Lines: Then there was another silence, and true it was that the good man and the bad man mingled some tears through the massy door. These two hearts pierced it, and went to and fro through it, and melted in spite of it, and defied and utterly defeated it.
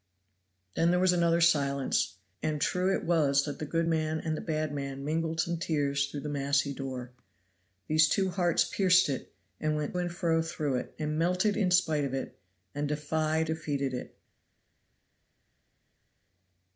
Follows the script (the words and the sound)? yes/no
no